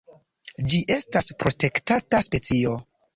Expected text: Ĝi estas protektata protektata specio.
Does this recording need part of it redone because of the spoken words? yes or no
yes